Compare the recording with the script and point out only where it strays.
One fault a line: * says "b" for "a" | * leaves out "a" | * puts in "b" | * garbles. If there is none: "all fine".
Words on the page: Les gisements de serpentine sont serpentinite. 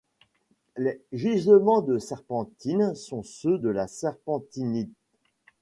* puts in "ceux de la"